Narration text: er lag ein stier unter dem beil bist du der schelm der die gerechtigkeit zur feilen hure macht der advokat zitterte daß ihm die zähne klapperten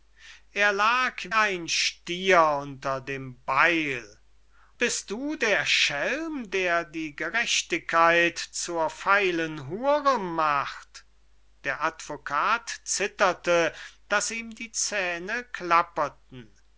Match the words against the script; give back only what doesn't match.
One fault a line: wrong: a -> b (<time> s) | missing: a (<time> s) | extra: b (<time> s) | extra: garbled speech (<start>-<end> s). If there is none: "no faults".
no faults